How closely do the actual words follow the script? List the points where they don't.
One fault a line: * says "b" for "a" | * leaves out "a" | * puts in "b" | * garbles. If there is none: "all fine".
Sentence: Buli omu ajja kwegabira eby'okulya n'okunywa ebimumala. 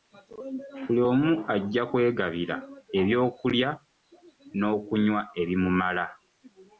all fine